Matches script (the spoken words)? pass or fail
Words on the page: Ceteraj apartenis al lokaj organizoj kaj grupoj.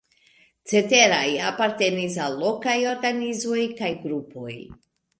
pass